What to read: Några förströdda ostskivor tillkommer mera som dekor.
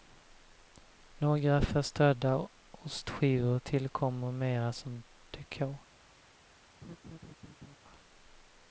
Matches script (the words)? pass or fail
pass